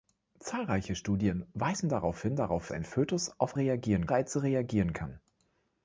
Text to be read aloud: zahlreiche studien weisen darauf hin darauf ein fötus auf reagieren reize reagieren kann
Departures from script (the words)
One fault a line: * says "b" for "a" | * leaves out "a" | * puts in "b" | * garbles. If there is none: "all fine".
all fine